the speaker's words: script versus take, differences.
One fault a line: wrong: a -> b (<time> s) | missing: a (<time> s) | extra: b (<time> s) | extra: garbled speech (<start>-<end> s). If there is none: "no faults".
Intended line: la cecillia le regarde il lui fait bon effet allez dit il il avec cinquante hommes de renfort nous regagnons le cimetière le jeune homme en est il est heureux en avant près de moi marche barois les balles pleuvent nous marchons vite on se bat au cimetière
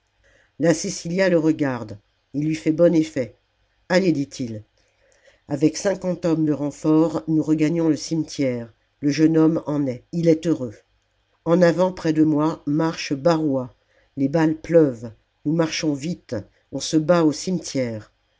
missing: il (4.6 s)